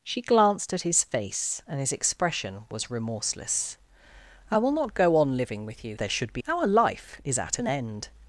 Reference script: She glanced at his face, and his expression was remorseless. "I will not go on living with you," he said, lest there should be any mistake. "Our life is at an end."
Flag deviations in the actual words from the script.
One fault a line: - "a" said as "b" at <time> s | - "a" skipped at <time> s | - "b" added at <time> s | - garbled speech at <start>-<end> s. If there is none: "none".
- "he said lest" skipped at 6.0 s
- "any mistake" skipped at 6.4 s